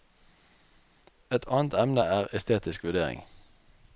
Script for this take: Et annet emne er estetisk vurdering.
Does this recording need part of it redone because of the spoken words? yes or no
no